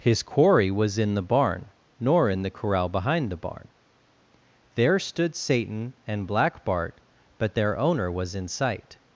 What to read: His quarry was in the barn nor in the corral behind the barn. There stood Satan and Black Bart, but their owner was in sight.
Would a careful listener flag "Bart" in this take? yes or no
no